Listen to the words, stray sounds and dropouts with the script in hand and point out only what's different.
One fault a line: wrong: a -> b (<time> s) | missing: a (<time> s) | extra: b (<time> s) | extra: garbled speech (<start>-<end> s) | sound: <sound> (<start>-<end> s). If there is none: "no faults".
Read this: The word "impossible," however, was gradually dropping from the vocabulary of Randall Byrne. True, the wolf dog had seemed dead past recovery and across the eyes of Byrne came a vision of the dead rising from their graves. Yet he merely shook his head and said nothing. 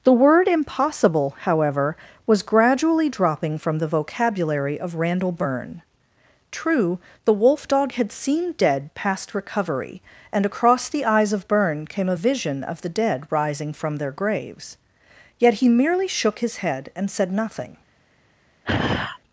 sound: sigh (18.6-19.2 s)